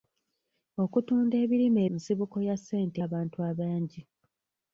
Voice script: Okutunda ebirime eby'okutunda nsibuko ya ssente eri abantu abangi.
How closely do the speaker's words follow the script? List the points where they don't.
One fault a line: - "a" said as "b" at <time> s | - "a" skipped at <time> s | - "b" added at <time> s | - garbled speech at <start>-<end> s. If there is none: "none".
- "eby'okutunda" skipped at 1.8 s
- "eri" skipped at 3.0 s